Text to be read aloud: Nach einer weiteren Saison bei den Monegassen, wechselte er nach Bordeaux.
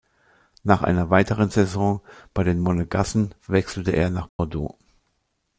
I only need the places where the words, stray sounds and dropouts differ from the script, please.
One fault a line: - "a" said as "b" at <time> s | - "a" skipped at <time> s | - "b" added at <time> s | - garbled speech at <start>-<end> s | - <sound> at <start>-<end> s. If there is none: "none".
- dropout at 4.3-4.4 s